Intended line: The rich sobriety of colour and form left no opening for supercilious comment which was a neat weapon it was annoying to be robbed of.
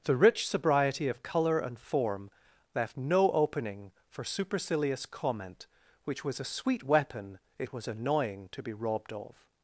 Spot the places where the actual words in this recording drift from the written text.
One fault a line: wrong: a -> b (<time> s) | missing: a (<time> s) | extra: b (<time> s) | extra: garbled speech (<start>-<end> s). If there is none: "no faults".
wrong: neat -> sweet (6.4 s)